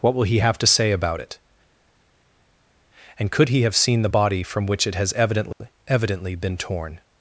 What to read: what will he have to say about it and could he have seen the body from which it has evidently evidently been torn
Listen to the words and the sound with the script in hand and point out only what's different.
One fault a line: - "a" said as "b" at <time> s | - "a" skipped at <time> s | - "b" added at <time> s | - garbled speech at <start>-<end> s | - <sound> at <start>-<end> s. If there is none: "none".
none